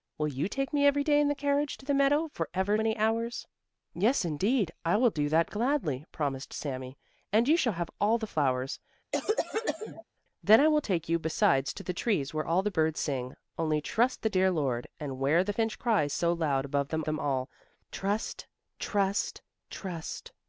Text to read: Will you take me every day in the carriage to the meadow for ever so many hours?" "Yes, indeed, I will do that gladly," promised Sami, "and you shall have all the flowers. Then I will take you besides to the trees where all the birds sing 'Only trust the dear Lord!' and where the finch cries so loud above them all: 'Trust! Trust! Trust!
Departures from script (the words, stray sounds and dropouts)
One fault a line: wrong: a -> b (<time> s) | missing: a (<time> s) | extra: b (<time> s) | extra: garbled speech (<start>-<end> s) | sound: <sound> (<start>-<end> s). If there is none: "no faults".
missing: so (2.8 s)
sound: cough (9.1-10.0 s)
extra: them (17.0 s)